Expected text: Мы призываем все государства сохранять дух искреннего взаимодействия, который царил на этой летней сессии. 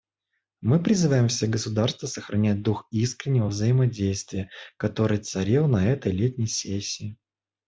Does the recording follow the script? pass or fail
pass